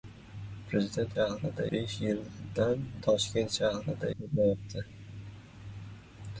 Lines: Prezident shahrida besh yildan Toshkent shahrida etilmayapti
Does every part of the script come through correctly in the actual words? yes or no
yes